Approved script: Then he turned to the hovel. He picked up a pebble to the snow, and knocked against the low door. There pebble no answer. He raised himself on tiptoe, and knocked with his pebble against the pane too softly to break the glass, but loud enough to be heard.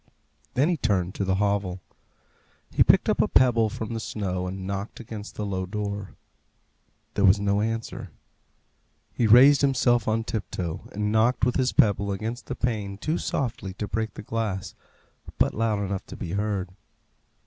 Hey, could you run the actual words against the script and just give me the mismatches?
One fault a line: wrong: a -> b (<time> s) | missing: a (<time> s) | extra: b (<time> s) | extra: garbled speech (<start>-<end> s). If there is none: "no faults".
wrong: to -> from (3.7 s)
wrong: pebble -> was (7.2 s)